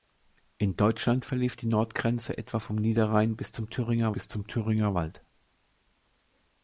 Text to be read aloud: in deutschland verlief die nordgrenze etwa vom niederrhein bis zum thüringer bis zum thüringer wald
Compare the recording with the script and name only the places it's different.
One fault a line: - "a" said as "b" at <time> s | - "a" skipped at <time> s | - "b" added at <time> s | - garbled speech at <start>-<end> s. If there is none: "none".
none